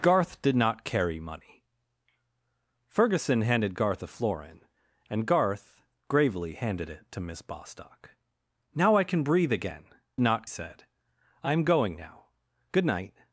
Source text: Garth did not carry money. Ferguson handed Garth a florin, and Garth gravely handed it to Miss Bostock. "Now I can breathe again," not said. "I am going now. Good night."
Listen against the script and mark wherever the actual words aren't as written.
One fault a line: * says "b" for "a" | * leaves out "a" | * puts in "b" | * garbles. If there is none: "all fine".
all fine